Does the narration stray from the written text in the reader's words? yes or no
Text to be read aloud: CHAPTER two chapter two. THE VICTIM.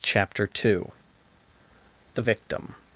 yes